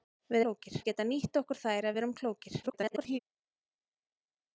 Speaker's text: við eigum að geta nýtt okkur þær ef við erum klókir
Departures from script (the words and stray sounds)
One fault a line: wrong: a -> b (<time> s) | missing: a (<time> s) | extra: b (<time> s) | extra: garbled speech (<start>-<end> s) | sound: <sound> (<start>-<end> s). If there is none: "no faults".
wrong: eigum -> klókir (0.4 s)
extra: garbled speech (2.6-3.2 s)